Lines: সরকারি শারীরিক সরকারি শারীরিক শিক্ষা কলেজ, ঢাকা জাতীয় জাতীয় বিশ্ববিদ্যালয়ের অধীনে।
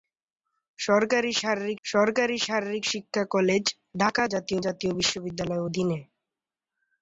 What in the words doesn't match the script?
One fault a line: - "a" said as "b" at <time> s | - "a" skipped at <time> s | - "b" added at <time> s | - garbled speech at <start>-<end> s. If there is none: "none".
none